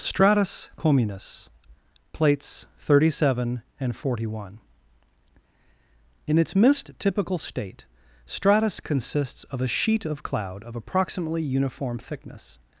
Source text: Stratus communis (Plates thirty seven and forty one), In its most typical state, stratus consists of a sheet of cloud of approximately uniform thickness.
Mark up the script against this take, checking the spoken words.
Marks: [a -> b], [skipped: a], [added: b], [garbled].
Stratus communis (Plates thirty seven and forty one), In its [most -> mist] typical state, stratus consists of a sheet of cloud of approximately uniform thickness.